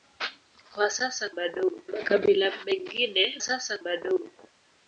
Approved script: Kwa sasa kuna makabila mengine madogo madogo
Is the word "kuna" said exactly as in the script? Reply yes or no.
no